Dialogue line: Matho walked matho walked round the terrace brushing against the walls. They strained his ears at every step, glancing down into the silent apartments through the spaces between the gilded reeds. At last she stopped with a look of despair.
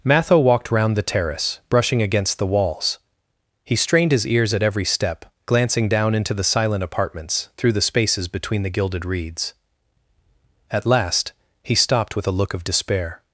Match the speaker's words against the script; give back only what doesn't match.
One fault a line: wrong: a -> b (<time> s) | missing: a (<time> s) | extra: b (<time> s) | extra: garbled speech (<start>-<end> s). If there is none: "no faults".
missing: matho walked (0.7 s)
wrong: They -> He (3.6 s)
wrong: she -> he (11.6 s)